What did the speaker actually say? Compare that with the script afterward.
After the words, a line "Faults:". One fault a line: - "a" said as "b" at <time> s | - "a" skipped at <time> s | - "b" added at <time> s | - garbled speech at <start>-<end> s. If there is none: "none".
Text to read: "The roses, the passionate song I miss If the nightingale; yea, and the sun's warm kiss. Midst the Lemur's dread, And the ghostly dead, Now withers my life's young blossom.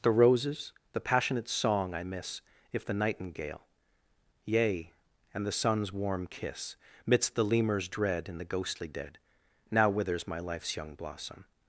"The roses, the passionate song I miss If the nightingale; yea, and the sun's warm kiss. Midst the Lemur's dread, And the ghostly dead, Now withers my life's young blossom.
Faults:
none